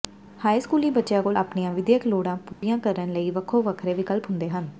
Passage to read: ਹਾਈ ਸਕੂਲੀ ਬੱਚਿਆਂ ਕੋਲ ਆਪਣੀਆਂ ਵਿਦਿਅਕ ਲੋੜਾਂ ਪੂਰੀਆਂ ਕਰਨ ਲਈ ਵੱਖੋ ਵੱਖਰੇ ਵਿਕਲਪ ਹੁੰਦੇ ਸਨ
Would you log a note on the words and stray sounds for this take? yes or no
yes